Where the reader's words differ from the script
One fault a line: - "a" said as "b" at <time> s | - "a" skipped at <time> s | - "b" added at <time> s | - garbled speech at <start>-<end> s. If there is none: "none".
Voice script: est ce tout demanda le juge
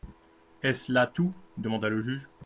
- "là" added at 0.9 s